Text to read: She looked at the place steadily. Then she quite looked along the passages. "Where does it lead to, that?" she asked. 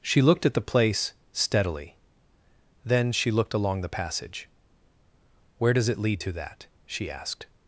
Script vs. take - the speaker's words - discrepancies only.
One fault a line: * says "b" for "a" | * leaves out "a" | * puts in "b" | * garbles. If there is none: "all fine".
* leaves out "quite"
* says "passage" for "passages"